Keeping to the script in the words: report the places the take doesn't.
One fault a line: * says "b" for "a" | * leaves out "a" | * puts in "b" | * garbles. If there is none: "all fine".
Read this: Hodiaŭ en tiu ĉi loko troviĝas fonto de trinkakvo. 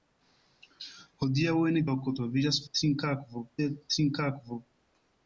* leaves out "tiu ĉi"
* says "trinkakvo" for "fonto"